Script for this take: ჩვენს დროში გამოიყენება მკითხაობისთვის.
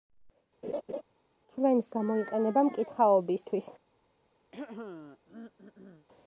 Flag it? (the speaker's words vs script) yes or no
yes